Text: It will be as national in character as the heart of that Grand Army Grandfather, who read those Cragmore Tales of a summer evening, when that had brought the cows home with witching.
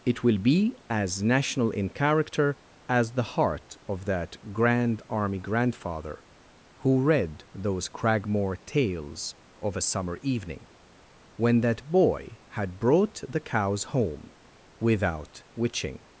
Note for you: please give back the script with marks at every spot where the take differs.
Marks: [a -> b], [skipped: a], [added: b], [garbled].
It will be as national in character as the heart of that Grand Army Grandfather, who read those Cragmore Tales of a summer evening, when that [added: boy] had brought the cows home [with -> without] witching.